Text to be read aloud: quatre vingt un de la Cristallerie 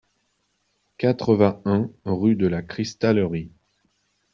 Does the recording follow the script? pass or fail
fail